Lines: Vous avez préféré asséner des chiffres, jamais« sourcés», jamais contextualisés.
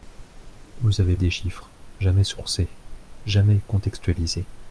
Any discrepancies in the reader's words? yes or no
yes